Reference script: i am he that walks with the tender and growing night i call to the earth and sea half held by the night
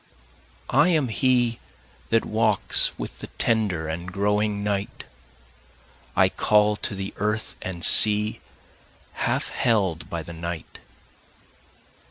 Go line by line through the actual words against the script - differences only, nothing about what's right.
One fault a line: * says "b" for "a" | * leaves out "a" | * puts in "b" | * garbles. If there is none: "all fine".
all fine